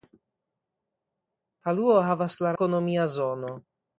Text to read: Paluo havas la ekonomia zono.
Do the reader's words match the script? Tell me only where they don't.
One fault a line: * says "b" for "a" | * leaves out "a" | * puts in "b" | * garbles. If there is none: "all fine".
all fine